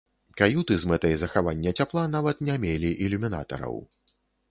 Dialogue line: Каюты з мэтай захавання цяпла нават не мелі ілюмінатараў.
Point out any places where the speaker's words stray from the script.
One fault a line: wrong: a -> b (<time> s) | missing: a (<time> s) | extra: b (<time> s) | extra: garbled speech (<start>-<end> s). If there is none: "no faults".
no faults